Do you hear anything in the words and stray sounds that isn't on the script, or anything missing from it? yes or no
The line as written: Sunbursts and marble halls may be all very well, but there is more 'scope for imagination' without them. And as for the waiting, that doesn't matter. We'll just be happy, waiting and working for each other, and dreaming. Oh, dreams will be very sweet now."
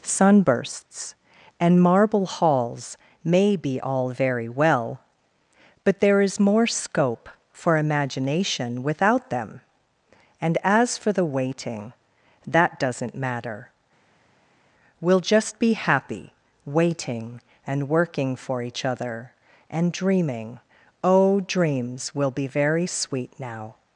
no